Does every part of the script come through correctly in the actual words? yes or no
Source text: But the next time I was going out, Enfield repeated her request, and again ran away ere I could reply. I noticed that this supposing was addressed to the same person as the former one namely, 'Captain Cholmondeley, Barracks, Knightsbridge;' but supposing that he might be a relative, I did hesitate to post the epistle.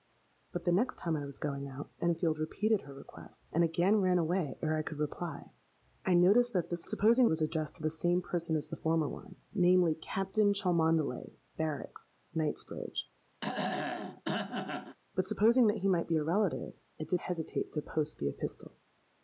yes